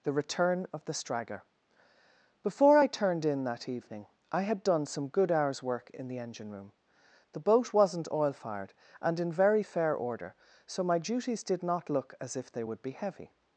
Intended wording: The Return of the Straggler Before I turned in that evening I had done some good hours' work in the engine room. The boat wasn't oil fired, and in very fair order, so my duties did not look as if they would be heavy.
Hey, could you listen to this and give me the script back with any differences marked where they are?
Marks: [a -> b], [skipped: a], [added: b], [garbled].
The Return of the Straggler Before I turned in that evening I had done some good hours' work in the engine room. The boat wasn't oil fired, and in very fair order, so my duties did not look as if they would be heavy.